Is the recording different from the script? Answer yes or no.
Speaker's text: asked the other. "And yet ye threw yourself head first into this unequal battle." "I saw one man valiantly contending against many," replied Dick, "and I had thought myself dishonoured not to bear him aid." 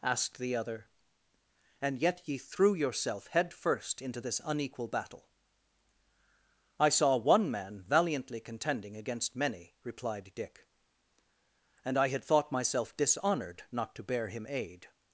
no